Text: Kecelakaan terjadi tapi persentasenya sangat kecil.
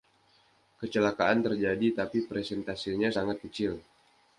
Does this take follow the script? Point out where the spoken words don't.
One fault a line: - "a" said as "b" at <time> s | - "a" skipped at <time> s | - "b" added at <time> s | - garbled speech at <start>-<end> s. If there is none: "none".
none